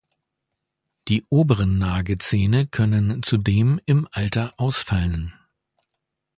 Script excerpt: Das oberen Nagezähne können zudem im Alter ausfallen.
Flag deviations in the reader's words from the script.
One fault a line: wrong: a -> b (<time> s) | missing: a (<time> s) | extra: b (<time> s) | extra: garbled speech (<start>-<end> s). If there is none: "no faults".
wrong: Das -> Die (1.1 s)